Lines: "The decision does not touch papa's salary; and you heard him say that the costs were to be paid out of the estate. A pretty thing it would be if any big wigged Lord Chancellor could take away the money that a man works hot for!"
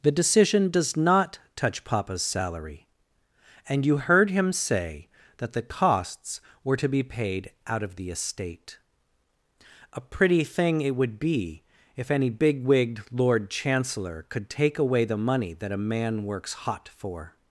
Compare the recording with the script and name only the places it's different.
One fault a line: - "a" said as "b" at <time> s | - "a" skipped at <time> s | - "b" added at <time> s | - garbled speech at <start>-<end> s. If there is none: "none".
none